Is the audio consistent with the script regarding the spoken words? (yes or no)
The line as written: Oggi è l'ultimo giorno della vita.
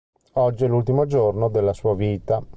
no